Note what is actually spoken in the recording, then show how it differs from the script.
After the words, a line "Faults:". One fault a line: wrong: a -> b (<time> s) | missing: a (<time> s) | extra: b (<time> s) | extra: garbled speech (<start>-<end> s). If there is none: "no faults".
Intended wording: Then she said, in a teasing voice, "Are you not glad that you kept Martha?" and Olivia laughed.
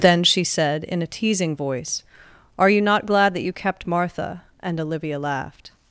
Then she said, in a teasing voice, "Are you not glad that you kept Martha?" and Olivia laughed.
Faults:
no faults